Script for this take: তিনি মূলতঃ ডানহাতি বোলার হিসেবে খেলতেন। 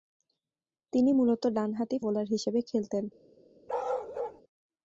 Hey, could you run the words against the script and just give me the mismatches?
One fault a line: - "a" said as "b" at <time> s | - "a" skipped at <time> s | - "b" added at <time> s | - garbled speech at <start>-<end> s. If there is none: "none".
none